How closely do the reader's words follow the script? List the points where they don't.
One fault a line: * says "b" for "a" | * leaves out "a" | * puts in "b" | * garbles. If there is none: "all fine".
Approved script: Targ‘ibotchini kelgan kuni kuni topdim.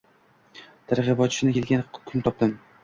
* leaves out "kuni"